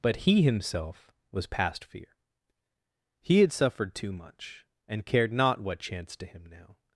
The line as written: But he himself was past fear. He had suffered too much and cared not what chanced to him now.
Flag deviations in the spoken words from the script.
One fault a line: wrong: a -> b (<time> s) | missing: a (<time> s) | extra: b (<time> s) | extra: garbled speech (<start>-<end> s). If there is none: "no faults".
no faults